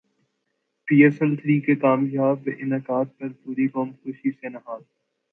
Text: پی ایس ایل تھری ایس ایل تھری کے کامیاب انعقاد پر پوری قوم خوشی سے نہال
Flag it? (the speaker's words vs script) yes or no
yes